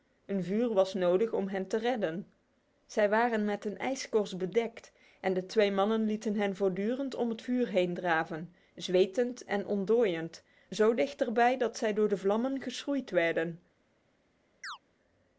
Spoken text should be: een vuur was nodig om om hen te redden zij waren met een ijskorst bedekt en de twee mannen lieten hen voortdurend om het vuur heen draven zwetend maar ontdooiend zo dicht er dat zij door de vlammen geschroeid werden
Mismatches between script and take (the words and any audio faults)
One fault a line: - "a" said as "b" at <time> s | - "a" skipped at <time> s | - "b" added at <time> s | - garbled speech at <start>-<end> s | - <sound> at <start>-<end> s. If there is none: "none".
- "om" skipped at 1.5 s
- "maar" said as "en" at 9.4 s
- "bij" added at 11.3 s
- chirp at 14.6-14.8 s